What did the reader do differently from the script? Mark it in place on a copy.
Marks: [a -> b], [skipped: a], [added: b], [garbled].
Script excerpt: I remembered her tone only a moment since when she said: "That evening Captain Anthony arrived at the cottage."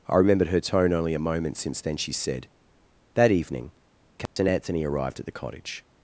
I remembered her tone only a moment since [when -> then] she said: "That evening Captain Anthony arrived at the cottage."